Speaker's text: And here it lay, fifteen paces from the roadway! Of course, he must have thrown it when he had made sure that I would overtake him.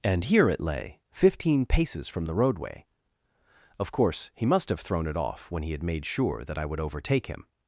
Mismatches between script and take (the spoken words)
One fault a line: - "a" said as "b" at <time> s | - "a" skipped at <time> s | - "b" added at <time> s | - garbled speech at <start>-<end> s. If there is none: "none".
- "off" added at 5.2 s